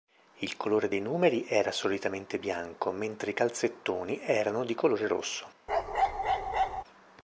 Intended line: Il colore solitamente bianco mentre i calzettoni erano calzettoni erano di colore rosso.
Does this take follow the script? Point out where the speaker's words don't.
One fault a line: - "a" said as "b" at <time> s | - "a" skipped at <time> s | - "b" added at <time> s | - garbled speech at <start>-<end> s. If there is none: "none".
- "dei numeri era" added at 0.9 s
- "calzettoni erano" skipped at 4.6 s